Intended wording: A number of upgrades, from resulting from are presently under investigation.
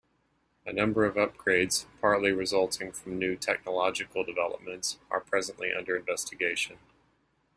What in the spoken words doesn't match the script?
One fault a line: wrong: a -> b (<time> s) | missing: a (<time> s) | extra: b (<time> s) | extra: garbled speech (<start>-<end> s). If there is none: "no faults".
wrong: from -> partly (2.0 s)
extra: new technological developments (3.2 s)